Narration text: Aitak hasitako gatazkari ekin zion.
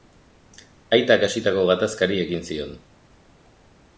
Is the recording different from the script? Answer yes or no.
no